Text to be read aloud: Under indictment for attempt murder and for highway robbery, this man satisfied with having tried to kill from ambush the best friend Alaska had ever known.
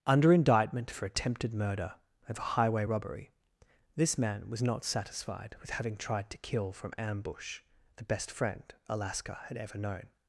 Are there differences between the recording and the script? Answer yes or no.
yes